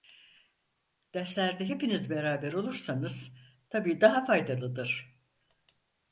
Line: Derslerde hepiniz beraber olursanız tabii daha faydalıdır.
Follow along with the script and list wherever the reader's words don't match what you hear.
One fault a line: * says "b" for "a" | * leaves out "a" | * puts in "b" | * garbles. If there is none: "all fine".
all fine